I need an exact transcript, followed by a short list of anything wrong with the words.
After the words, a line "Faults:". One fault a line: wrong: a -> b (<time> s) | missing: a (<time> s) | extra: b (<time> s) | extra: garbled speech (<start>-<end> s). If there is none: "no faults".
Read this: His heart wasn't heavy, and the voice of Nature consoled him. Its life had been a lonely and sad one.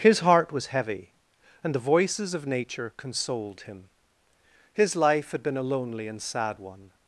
His heart was heavy, and the voices of Nature consoled him. His life had been a lonely and sad one.
Faults:
wrong: wasn't -> was (0.5 s)
wrong: voice -> voices (1.9 s)
wrong: Its -> His (4.7 s)